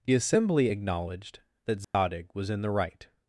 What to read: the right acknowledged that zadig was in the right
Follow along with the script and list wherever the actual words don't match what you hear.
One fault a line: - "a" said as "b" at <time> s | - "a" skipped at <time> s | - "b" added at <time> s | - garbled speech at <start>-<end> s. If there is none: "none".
- "right" said as "assembly" at 0.1 s